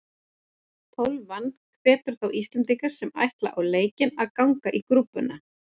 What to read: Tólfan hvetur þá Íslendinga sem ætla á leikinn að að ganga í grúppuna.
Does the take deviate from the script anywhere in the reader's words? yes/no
yes